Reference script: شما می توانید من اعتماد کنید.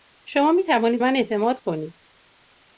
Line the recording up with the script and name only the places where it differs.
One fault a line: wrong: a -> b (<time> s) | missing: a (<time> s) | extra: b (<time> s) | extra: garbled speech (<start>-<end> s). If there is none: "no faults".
no faults